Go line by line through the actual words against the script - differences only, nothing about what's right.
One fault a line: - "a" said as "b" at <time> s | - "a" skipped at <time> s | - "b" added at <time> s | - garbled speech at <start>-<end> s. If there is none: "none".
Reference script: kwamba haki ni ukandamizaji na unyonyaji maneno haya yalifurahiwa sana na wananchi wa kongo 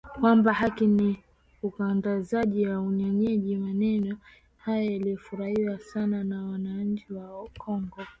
none